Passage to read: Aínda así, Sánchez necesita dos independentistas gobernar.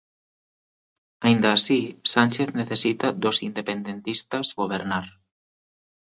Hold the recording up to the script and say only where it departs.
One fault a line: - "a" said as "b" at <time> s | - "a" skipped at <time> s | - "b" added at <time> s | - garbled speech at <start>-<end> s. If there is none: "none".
none